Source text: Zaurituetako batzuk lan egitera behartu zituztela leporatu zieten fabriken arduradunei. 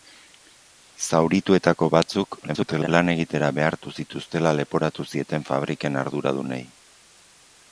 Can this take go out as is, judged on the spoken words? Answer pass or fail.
fail